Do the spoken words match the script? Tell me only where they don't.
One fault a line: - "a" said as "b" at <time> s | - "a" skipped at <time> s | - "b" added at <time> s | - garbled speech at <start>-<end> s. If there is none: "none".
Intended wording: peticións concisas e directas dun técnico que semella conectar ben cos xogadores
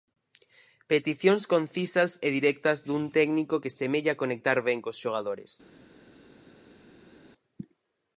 none